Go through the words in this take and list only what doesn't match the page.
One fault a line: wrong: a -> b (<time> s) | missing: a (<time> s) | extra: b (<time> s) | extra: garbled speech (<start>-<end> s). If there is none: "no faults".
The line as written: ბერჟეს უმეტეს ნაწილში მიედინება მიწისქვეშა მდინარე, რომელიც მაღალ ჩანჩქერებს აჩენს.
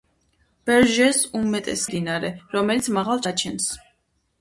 missing: ნაწილში მიედინება მიწისქვეშა (1.8 s)
missing: ჩანჩქერებს (3.3 s)